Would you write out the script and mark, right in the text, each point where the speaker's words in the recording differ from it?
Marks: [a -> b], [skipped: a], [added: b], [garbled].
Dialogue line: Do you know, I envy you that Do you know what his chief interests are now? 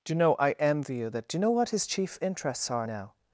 Do you know, I envy you that Do you know what his chief interests are now?